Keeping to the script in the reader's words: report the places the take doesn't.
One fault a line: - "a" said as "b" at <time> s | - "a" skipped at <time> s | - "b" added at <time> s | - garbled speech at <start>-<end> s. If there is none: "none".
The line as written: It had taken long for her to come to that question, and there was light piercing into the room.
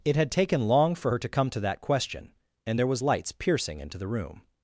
- "light" said as "lights" at 3.0 s